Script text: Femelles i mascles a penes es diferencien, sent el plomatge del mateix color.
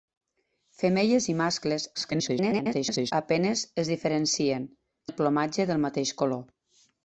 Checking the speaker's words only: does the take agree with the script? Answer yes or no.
no